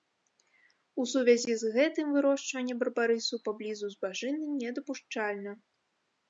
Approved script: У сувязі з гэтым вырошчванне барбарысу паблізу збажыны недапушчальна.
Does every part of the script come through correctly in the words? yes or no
yes